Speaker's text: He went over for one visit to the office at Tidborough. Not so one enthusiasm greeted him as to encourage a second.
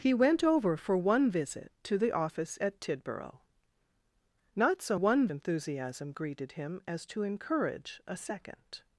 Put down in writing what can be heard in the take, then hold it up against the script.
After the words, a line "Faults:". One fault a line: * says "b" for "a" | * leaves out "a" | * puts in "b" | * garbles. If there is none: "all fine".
He went over for one visit to the office at Tidborough. Not so one enthusiasm greeted him as to encourage a second.
Faults:
all fine